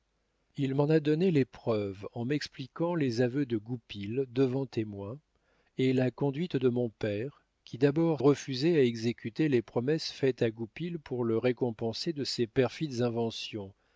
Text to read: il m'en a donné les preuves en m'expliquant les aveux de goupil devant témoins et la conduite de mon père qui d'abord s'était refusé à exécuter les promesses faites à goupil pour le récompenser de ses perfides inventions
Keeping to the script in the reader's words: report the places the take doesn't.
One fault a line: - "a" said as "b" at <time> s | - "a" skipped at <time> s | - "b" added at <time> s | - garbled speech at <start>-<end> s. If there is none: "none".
- "s'était" skipped at 8.2 s